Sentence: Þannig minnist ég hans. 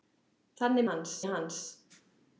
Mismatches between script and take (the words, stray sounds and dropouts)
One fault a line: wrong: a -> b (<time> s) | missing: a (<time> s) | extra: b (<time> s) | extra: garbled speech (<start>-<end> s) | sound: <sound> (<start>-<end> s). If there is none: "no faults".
wrong: minnist -> hans (0.9 s)